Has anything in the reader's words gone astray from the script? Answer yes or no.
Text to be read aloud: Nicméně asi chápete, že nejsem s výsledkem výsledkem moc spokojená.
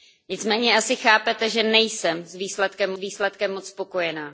no